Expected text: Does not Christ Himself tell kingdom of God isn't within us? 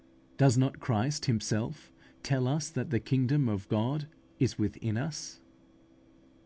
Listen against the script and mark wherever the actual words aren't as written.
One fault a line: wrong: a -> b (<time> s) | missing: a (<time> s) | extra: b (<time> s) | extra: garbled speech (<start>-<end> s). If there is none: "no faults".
extra: us that the (2.5 s)
wrong: isn't -> is (4.4 s)